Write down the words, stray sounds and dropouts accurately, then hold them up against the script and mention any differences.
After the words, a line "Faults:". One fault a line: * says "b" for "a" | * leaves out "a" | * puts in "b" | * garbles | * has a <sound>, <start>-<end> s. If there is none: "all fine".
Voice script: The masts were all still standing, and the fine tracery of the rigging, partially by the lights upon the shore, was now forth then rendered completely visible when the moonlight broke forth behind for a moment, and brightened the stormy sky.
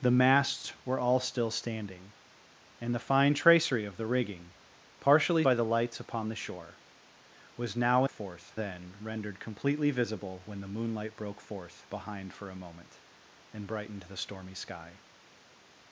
The masts were all still standing, and the fine tracery of the rigging, partially by the lights upon the shore, was now forth then rendered completely visible when the moonlight broke forth behind for a moment, and brightened the stormy sky.
Faults:
all fine